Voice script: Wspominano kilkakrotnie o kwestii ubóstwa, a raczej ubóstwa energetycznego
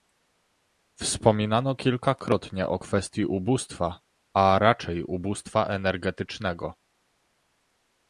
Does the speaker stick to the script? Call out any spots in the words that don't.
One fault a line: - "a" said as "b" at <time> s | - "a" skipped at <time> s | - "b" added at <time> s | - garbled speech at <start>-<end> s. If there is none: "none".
none